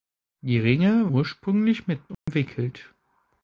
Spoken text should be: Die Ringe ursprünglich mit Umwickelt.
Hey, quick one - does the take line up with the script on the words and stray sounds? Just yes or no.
no